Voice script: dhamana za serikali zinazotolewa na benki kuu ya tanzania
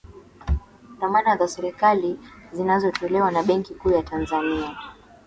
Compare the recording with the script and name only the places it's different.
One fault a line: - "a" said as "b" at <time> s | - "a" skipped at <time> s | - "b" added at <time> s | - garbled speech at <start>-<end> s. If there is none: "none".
none